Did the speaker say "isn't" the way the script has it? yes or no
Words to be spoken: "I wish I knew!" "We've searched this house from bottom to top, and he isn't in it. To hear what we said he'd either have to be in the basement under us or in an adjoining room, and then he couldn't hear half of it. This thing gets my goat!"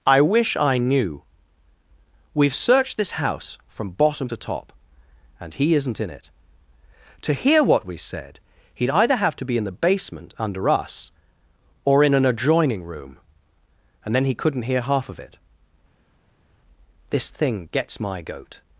yes